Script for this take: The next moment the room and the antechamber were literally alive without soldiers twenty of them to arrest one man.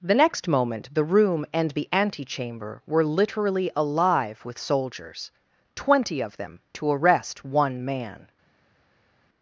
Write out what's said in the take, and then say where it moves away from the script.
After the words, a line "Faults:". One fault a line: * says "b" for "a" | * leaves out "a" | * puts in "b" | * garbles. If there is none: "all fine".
The next moment the room and the antechamber were literally alive with soldiers twenty of them to arrest one man.
Faults:
* says "with" for "without"